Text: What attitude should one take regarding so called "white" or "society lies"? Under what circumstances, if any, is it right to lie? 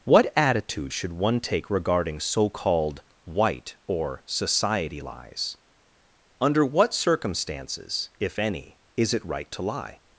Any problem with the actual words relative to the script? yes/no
no